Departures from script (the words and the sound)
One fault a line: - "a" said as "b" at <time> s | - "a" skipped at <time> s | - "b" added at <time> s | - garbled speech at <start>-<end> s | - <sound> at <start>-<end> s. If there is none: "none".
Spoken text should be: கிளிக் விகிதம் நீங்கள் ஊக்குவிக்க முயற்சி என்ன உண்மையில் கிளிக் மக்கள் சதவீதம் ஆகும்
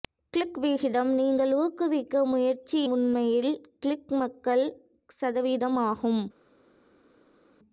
- "என்ன" skipped at 2.8 s